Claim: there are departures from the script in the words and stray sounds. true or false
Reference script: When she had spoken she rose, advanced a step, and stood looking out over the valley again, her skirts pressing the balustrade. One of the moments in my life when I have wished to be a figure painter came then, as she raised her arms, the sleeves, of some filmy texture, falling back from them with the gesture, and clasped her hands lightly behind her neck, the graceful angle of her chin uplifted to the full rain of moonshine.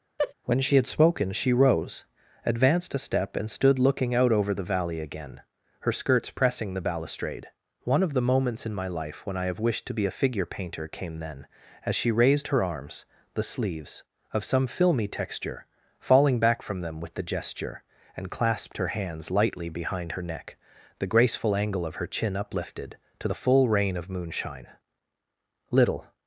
true